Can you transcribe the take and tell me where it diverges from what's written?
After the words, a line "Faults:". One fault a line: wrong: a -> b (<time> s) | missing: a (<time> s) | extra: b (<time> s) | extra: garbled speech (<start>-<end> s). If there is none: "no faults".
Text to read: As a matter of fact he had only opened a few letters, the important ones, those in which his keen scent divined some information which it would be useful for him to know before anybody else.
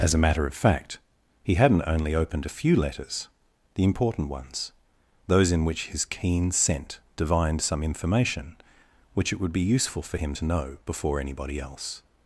As a matter of fact he hadn't only opened a few letters, the important ones, those in which his keen scent divined some information which it would be useful for him to know before anybody else.
Faults:
wrong: had -> hadn't (1.5 s)